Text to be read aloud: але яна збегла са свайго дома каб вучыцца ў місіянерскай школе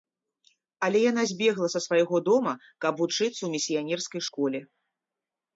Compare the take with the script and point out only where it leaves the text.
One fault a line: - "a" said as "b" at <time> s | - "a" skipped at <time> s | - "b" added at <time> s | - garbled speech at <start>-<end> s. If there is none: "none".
none